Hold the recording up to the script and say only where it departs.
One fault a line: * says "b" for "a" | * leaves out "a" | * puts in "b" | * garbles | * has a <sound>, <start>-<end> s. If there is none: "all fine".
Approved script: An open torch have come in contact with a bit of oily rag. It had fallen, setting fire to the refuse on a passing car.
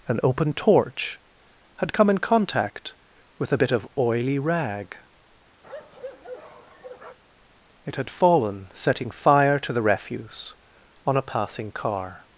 * says "had" for "have"
* has a bark, 5.6-7.2 s